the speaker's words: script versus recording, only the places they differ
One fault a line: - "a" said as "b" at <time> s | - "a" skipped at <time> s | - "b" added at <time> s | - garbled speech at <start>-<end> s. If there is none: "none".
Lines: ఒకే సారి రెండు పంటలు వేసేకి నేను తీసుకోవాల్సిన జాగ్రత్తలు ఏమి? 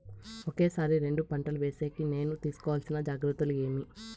none